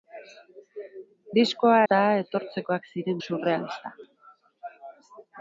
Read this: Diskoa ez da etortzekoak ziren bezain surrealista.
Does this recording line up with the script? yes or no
no